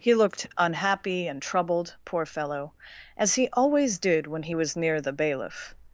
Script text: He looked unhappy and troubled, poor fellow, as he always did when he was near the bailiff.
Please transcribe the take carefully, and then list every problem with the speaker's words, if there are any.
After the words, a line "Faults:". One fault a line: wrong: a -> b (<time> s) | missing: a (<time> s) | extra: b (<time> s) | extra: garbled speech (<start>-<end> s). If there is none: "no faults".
He looked unhappy and troubled, poor fellow, as he always did when he was near the bailiff.
Faults:
no faults